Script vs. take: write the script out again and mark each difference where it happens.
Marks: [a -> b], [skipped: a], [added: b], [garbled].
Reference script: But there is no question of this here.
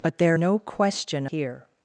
But there [skipped: is] no question [skipped: of this] here.